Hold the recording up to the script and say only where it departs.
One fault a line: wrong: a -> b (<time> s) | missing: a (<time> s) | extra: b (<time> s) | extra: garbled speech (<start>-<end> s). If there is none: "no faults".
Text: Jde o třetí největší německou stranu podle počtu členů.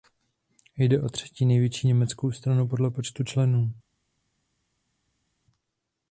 no faults